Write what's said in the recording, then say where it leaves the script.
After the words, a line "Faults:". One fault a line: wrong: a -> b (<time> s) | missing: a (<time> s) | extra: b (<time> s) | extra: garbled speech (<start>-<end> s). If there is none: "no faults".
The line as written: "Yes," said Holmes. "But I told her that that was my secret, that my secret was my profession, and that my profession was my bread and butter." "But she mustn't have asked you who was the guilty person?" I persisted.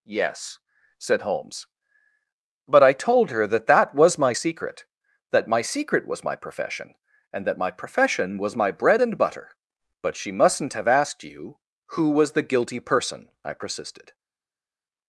"Yes," said Holmes. "But I told her that that was my secret, that my secret was my profession, and that my profession was my bread and butter." "But she mustn't have asked you who was the guilty person?" I persisted.
Faults:
no faults